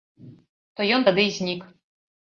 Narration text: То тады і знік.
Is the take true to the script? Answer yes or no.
no